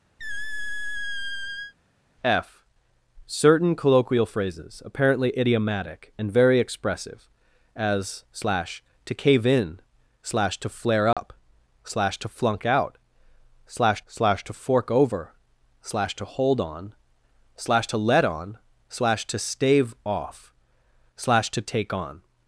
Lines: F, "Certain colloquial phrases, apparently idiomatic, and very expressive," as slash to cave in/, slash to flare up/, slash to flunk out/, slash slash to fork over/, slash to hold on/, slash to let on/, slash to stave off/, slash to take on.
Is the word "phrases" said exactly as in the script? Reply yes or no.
yes